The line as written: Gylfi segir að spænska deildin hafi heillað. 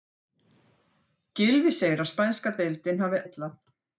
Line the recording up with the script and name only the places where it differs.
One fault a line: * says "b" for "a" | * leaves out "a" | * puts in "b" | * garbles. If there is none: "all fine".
all fine